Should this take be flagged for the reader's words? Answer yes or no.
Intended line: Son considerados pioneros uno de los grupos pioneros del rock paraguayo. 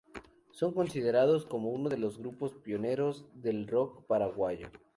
yes